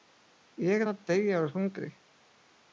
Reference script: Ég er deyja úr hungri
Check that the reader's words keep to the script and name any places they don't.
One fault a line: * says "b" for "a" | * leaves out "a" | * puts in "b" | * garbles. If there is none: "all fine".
* puts in "að"